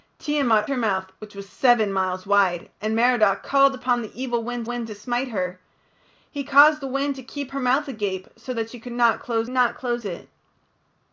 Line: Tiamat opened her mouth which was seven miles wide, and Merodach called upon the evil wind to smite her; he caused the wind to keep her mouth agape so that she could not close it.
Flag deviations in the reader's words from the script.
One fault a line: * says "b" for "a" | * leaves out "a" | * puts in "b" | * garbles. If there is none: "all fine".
* leaves out "opened"
* puts in "wind"
* puts in "not close"